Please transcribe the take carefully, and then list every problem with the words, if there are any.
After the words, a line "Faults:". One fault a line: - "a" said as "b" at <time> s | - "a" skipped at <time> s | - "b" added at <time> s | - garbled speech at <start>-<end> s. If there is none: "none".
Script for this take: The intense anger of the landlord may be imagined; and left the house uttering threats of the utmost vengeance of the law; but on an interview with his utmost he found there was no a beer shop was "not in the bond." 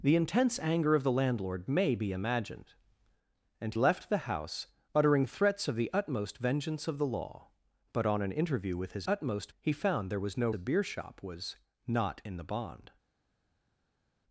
The intense anger of the landlord may be imagined; and left the house uttering threats of the utmost vengeance of the law; but on an interview with his utmost he found there was no a beer shop was "not in the bond."
Faults:
none